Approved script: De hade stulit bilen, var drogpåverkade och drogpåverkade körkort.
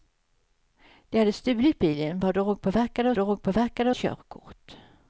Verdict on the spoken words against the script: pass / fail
pass